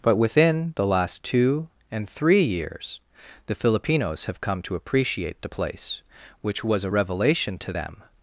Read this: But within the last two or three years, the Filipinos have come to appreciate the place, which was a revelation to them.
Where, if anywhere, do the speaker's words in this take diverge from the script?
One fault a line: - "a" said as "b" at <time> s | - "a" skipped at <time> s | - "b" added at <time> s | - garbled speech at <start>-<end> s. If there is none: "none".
- "or" said as "and" at 1.9 s